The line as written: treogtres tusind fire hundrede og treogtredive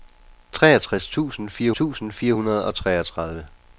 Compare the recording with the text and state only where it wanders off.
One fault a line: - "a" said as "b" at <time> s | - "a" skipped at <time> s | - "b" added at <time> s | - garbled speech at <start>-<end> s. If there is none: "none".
- "tusind fire" added at 1.7 s